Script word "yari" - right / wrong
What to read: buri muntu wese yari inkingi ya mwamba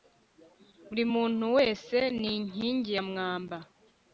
wrong